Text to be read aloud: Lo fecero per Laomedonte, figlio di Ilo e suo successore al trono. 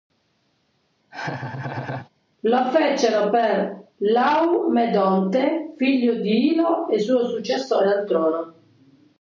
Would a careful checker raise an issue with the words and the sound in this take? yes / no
yes